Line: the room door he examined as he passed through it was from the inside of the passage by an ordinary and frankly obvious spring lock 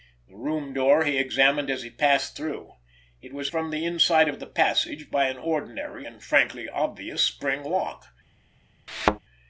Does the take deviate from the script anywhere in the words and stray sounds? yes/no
yes